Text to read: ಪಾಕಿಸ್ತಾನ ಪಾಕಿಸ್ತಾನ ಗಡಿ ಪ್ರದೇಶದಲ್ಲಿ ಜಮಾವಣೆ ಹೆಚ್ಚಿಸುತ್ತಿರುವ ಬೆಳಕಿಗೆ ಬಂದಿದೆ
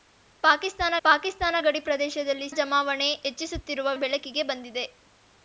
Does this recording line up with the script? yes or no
yes